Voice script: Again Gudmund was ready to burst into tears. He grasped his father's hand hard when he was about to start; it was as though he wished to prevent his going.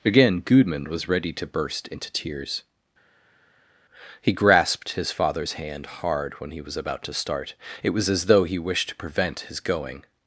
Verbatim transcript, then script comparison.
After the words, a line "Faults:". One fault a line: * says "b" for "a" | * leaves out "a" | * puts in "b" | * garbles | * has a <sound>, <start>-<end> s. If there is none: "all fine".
Again Gudmund was ready to burst into tears. He grasped his father's hand hard when he was about to start; it was as though he wished to prevent his going.
Faults:
all fine